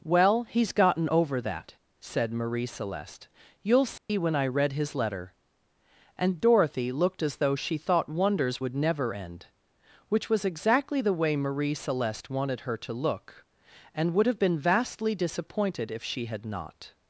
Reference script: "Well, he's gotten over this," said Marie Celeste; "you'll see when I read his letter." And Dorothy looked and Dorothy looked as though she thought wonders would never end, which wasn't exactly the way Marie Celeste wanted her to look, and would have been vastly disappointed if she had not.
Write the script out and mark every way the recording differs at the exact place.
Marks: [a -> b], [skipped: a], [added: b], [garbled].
"Well, he's gotten over [this," -> that] said Marie Celeste; "you'll see when I read his letter." And Dorothy looked [skipped: and Dorothy looked] as though she thought wonders would never end, which [wasn't -> was] exactly the way Marie Celeste wanted her to look, and would have been vastly disappointed if she had not.